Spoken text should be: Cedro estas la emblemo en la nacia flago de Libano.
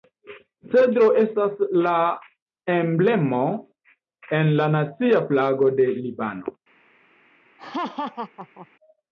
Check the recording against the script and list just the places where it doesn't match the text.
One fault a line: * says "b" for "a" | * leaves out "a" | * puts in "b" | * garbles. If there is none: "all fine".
all fine